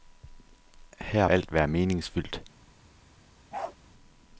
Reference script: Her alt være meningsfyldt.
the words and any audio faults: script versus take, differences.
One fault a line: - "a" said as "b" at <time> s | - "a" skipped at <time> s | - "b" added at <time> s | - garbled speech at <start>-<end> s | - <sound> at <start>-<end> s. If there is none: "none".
- bark at 3.5-3.8 s